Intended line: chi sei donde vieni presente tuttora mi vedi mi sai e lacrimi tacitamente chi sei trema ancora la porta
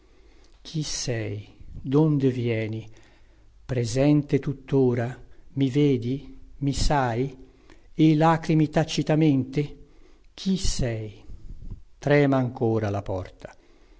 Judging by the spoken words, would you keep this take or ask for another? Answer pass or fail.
pass